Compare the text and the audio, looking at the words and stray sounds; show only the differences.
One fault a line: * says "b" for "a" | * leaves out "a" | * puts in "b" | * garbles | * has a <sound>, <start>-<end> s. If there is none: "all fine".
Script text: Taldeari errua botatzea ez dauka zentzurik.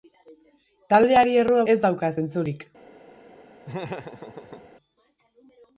* leaves out "botatzea"
* has a laugh, 3.6-4.7 s